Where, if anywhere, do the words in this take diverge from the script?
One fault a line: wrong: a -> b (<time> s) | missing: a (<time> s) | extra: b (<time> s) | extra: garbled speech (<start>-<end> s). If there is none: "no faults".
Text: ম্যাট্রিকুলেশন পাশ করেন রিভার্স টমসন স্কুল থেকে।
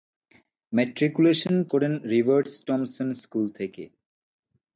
missing: পাশ (1.6 s)